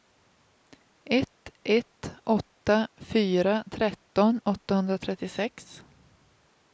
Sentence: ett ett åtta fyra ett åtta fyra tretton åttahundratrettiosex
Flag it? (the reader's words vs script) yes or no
yes